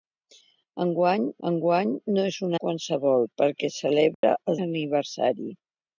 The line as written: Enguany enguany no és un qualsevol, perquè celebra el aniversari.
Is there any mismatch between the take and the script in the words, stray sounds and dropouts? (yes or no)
yes